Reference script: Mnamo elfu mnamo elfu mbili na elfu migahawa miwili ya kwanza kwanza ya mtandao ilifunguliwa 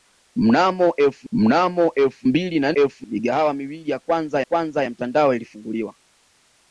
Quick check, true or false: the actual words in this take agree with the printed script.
true